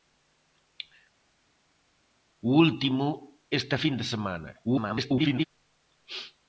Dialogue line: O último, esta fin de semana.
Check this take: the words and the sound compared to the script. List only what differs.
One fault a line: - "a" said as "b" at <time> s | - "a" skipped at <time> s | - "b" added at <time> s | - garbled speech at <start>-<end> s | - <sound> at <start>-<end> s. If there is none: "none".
- garbled speech at 4.6-5.5 s